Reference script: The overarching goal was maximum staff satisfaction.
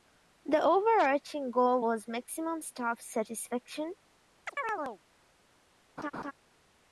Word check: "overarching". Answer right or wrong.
right